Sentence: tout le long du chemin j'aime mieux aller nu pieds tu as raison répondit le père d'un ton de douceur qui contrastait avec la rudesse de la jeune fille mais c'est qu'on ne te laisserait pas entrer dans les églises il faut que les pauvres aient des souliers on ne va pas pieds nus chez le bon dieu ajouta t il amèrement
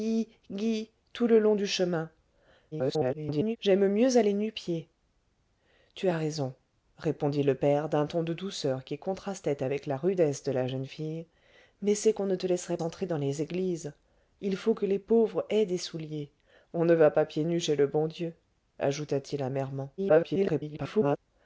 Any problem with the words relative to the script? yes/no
yes